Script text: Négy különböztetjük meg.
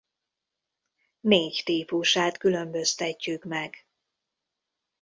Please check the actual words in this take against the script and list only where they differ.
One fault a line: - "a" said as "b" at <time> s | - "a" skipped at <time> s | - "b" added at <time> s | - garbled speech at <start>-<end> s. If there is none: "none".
- "típusát" added at 1.6 s